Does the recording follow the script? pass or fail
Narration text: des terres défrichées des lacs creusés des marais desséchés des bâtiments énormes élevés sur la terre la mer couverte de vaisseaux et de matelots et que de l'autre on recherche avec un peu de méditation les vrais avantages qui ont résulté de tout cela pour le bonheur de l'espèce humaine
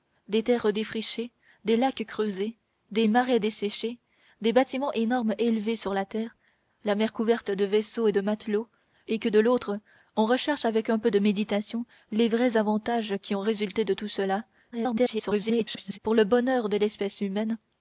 fail